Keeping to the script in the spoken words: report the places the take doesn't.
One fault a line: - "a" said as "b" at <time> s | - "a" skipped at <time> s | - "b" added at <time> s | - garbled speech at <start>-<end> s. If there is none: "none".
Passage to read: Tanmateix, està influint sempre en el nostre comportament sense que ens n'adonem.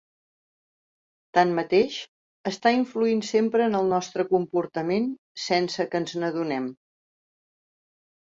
none